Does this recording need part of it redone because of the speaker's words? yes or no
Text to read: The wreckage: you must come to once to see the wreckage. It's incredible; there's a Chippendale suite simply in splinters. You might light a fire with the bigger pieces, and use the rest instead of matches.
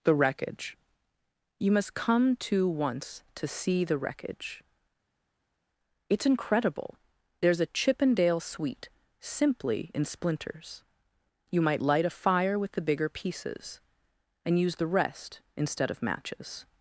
no